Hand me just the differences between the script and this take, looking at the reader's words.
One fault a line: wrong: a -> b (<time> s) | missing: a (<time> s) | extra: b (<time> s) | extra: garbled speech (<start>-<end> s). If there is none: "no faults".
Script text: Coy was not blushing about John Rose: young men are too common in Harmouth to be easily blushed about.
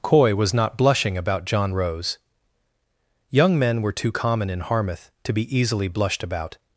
wrong: are -> were (3.8 s)